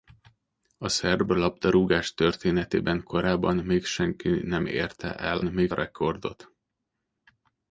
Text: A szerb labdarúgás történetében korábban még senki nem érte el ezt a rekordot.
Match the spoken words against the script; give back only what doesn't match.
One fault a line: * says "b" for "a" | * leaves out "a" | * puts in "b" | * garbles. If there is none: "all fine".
* says "még" for "ezt"